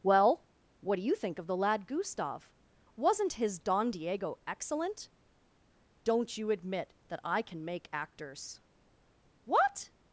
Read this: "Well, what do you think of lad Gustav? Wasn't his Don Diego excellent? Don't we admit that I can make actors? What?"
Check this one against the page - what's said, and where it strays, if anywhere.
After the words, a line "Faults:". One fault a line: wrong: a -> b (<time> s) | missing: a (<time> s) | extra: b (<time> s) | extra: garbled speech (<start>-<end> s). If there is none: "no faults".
"Well, what do you think of the lad Gustav? Wasn't his Don Diego excellent? Don't you admit that I can make actors? What?"
Faults:
extra: the (1.5 s)
wrong: we -> you (6.4 s)